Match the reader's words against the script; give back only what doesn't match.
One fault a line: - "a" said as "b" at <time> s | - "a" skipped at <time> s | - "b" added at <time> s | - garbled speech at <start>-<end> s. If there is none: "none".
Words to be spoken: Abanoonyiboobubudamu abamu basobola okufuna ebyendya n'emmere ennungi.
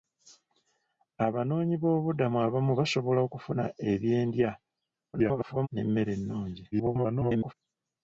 - garbled speech at 5.1-5.7 s
- garbled speech at 6.7-7.5 s